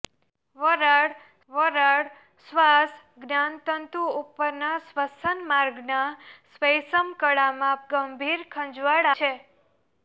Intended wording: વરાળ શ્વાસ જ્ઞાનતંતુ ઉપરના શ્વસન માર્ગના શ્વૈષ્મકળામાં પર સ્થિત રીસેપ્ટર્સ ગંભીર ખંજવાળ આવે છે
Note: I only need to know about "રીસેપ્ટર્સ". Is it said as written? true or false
false